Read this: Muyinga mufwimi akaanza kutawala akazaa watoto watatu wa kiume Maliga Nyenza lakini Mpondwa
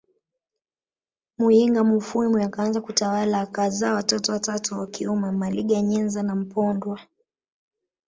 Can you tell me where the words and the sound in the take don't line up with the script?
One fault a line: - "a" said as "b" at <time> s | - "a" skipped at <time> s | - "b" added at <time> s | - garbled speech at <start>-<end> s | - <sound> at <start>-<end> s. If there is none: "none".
- "lakini" said as "na" at 6.2 s